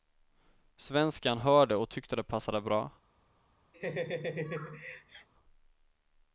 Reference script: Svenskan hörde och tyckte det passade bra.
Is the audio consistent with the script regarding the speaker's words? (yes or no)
yes